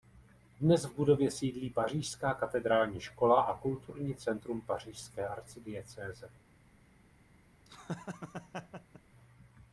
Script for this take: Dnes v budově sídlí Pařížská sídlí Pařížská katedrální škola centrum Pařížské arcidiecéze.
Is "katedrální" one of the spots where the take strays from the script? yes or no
yes